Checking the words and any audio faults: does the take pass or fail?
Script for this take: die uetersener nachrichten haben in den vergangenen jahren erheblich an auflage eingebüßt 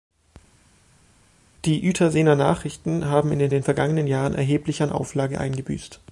fail